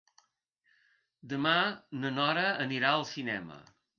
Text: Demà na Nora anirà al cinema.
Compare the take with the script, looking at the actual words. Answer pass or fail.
pass